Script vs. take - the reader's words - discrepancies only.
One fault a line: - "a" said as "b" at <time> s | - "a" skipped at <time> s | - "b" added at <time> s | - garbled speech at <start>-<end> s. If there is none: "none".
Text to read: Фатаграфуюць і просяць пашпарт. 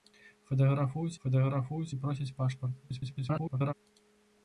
- "фатаграфуюць" added at 1.2 s
- garbled speech at 2.8-3.7 s